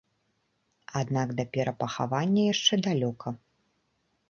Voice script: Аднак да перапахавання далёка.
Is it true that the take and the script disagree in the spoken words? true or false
true